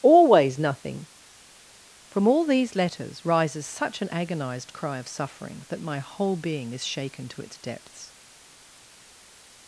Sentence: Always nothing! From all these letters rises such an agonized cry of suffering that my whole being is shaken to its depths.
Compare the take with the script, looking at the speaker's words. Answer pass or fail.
pass